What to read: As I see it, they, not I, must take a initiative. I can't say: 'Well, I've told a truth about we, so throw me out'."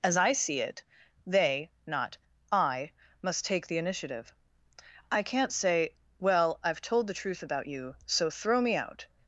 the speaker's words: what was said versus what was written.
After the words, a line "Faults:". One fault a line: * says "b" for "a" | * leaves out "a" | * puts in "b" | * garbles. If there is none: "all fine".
As I see it, they, not I, must take the initiative. I can't say: 'Well, I've told the truth about you, so throw me out'."
Faults:
* says "the" for "a"
* says "the" for "a"
* says "you" for "we"